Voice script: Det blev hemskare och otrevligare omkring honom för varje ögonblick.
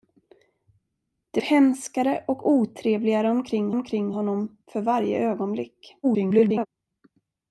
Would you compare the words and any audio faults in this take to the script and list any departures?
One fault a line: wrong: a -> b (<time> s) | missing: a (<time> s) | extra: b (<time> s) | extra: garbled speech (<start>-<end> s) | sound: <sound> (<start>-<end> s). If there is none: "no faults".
missing: blev (1.4 s)
extra: omkring (3.7 s)
extra: garbled speech (6.0-6.7 s)